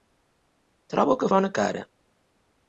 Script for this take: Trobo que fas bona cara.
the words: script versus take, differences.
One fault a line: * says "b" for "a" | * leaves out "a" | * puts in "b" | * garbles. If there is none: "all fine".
* leaves out "fas"